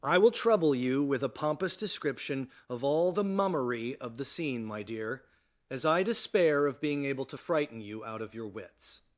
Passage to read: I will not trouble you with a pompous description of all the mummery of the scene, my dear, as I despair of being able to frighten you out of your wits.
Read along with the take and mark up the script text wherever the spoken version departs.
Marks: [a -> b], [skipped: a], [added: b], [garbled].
I will [skipped: not] trouble you with a pompous description of all the mummery of the scene, my dear, as I despair of being able to frighten you out of your wits.